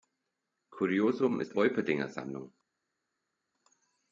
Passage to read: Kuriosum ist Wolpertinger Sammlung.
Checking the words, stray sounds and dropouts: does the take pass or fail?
pass